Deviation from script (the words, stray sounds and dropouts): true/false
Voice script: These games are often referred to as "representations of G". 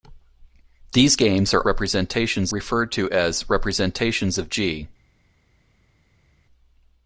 true